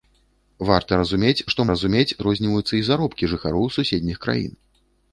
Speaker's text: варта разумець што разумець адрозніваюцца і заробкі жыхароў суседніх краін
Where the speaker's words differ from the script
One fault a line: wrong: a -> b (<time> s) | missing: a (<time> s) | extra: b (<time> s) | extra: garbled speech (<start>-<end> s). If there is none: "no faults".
no faults